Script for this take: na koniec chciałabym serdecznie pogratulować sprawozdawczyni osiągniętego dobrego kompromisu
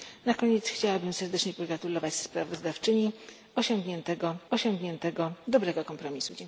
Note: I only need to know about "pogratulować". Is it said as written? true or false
true